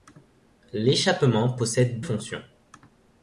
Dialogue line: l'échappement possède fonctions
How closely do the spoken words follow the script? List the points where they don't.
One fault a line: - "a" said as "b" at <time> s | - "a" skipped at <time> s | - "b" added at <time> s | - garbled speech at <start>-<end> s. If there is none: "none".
none